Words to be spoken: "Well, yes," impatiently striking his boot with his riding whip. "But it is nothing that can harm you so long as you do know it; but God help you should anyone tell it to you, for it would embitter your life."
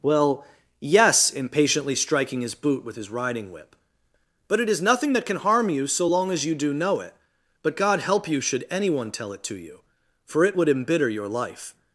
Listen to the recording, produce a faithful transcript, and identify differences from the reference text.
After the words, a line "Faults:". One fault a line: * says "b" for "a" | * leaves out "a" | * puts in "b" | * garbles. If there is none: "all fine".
"Well, yes," impatiently striking his boot with his riding whip. "But it is nothing that can harm you so long as you do know it; but God help you should anyone tell it to you, for it would embitter your life."
Faults:
all fine